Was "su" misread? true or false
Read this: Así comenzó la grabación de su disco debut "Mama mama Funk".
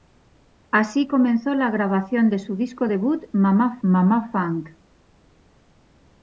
false